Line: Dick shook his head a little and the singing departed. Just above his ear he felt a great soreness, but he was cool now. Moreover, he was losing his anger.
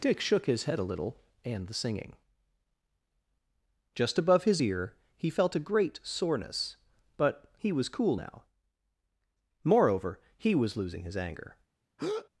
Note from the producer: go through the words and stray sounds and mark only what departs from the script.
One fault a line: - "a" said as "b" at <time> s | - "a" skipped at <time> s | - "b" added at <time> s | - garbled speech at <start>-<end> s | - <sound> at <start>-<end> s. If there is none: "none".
- "departed" skipped at 2.1 s
- breath at 12.0-12.3 s